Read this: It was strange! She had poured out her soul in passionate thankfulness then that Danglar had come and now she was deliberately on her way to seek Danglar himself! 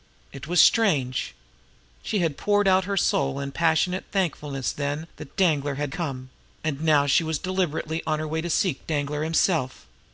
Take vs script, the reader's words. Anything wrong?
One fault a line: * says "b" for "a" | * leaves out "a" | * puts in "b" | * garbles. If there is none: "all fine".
all fine